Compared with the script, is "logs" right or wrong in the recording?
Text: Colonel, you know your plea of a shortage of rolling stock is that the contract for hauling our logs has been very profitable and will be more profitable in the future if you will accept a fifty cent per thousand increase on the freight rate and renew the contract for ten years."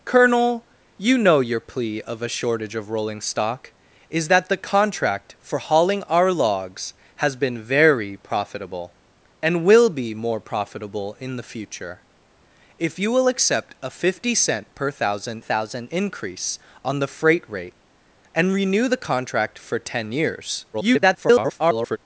right